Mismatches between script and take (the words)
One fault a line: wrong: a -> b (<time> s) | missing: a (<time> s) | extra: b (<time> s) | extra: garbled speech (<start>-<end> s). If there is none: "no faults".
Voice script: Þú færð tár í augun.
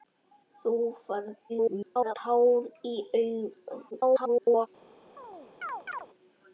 extra: garbled speech (1.5-2.1 s)
extra: garbled speech (3.9-4.7 s)